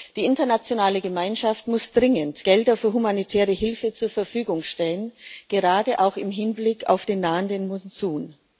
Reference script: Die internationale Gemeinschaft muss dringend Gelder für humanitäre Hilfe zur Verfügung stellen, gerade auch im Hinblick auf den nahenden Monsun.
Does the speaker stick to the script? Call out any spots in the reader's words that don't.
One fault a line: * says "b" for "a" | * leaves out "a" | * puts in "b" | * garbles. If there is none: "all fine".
all fine